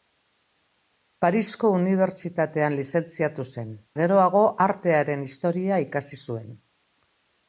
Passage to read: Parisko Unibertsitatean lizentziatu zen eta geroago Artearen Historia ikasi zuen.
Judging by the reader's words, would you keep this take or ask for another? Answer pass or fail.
fail